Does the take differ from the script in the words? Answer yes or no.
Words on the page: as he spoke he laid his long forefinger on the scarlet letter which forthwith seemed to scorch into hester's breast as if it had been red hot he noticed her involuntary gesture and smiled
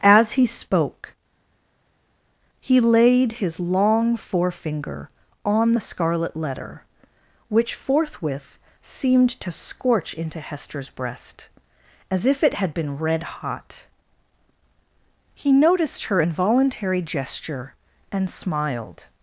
no